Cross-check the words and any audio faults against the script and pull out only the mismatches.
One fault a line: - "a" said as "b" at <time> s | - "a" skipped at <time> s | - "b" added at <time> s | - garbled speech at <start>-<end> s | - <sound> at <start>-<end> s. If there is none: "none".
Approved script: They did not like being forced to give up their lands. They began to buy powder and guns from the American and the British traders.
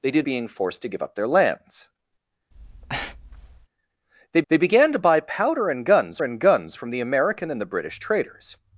- "not like" skipped at 0.3 s
- breath at 2.5-3.7 s
- "they" added at 4.5 s
- "and guns" added at 6.2 s